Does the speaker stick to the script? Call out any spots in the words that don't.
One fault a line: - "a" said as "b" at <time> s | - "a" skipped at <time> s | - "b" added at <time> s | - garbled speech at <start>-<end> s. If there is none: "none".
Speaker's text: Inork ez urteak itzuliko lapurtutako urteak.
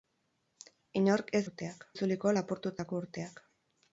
none